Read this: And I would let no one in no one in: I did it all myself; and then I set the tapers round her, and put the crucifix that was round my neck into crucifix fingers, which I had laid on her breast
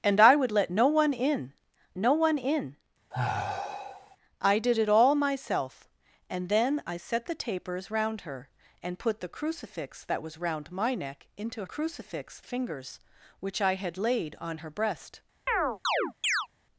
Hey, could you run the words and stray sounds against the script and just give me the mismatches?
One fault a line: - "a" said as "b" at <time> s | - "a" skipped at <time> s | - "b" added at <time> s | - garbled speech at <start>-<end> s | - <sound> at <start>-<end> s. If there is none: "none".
- sigh at 3.1-4.2 s
- chirp at 15.5-16.5 s